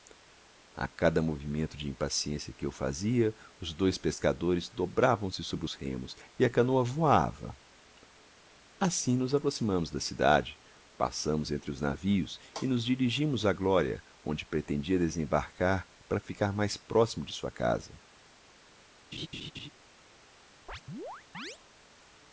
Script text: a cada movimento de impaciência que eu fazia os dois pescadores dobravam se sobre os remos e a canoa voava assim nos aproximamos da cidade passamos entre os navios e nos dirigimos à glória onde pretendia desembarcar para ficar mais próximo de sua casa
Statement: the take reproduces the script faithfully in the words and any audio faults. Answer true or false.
false